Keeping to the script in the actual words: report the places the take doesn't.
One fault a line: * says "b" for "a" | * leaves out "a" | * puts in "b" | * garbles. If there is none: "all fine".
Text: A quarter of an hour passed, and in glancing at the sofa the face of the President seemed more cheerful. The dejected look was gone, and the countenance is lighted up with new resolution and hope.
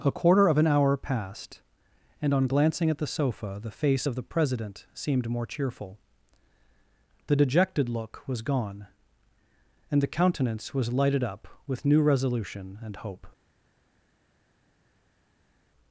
* says "on" for "in"
* says "was" for "is"